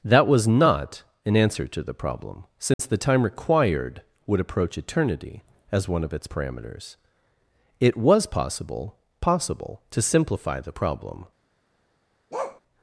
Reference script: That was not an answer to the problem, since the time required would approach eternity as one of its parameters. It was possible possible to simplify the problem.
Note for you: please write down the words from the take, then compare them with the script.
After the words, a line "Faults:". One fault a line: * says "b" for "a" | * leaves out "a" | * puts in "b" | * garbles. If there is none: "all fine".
That was not an answer to the problem, since the time required would approach eternity as one of its parameters. It was possible possible to simplify the problem.
Faults:
all fine